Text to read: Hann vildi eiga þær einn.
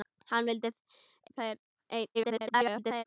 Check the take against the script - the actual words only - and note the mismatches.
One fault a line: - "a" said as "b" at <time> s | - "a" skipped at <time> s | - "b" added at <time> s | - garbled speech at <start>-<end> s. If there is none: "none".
- "eiga" skipped at 0.7 s
- garbled speech at 2.1-3.0 s